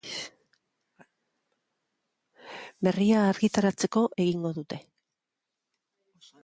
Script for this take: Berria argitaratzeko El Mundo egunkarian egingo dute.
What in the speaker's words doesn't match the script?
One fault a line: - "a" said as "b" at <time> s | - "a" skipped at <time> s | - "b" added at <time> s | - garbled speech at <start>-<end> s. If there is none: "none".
- "El Mundo egunkarian" skipped at 4.0 s